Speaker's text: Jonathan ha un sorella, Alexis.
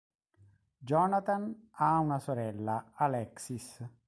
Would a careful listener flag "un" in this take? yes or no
yes